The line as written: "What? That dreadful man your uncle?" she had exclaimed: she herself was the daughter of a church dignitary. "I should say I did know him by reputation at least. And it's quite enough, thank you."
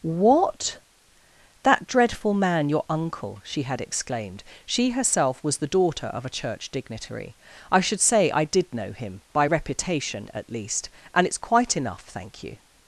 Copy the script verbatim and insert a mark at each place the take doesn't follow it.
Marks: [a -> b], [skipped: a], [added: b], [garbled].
"What? That dreadful man your uncle?" she had exclaimed: she herself was the daughter of a church dignitary. "I should say I did know him by reputation at least. And it's quite enough, thank you."